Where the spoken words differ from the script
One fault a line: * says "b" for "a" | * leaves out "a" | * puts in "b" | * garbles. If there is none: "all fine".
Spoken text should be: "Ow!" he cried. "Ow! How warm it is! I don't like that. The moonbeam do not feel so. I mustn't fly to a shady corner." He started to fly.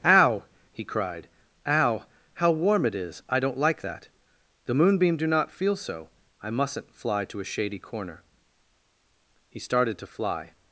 all fine